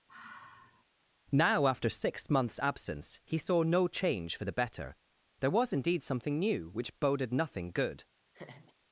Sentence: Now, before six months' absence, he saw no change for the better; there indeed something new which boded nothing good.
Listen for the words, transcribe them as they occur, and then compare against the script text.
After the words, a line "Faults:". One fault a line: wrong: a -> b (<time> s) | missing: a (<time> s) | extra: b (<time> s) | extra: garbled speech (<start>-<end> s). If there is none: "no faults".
Now, after six months' absence, he saw no change for the better; there was indeed something new which boded nothing good.
Faults:
wrong: before -> after (1.7 s)
extra: was (5.5 s)